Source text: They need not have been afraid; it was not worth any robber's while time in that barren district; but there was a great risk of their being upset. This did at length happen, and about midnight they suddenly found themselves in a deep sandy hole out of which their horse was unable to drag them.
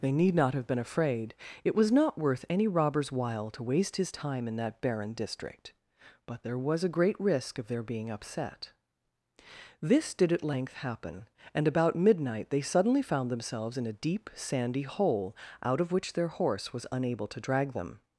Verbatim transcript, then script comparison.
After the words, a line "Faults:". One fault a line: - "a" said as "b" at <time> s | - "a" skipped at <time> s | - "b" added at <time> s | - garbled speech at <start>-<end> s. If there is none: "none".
They need not have been afraid; it was not worth any robber's while to waste his time in that barren district; but there was a great risk of their being upset. This did at length happen, and about midnight they suddenly found themselves in a deep sandy hole out of which their horse was unable to drag them.
Faults:
- "to waste his" added at 3.5 s